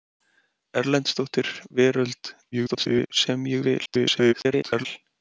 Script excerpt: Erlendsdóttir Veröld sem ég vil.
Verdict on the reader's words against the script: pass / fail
fail